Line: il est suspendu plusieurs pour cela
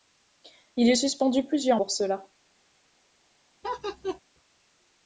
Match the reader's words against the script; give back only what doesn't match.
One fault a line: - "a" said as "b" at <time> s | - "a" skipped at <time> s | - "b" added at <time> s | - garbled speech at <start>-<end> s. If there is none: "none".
none